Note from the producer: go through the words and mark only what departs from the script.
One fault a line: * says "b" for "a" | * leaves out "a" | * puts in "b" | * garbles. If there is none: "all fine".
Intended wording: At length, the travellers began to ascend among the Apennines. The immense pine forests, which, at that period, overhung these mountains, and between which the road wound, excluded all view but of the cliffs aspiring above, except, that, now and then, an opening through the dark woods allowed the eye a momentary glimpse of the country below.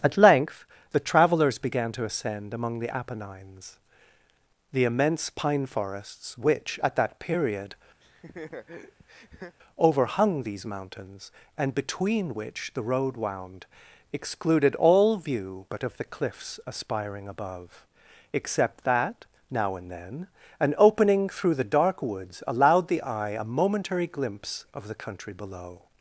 all fine